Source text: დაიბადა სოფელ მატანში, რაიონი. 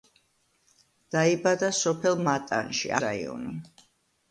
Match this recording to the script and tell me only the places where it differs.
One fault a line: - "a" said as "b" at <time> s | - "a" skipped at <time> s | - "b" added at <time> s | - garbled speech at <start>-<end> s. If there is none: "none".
none